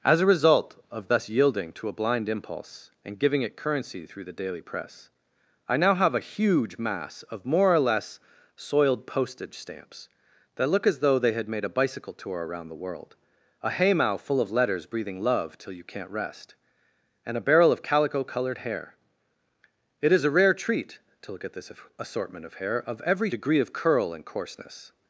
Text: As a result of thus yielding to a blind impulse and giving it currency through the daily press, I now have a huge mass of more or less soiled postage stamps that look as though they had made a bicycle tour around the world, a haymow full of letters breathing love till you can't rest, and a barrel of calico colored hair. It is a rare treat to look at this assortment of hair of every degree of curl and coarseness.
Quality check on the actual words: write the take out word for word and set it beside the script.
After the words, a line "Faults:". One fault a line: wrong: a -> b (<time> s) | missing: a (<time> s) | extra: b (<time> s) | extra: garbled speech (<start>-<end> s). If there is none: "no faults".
As a result of thus yielding to a blind impulse and giving it currency through the daily press, I now have a huge mass of more or less soiled postage stamps that look as though they had made a bicycle tour around the world, a haymow full of letters breathing love till you can't rest, and a barrel of calico colored hair. It is a rare treat to look at this assortment of hair of every degree of curl and coarseness.
Faults:
no faults